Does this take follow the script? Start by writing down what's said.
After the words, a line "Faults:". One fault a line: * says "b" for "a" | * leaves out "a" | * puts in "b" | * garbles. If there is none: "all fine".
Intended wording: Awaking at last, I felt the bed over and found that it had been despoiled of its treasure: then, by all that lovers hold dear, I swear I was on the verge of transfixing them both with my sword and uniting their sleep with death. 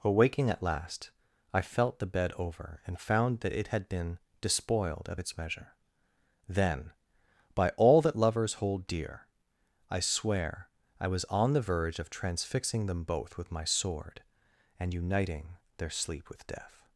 Awaking at last, I felt the bed over and found that it had been despoiled of its measure: then, by all that lovers hold dear, I swear I was on the verge of transfixing them both with my sword and uniting their sleep with death.
Faults:
* says "measure" for "treasure"